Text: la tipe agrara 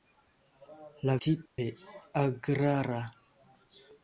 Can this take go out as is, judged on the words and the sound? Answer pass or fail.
fail